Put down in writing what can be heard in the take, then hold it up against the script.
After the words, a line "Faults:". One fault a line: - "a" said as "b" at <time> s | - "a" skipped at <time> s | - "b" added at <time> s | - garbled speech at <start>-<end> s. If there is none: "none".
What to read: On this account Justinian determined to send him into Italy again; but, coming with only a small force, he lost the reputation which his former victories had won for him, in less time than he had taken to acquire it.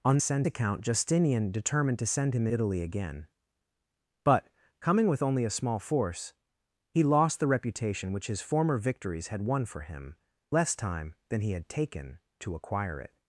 On send account Justinian determined to send him Italy again; but, coming with only a small force, he lost the reputation which his former victories had won for him, less time than he had taken to acquire it.
Faults:
- "this" said as "send" at 0.2 s
- "into" skipped at 2.5 s
- "in" skipped at 10.2 s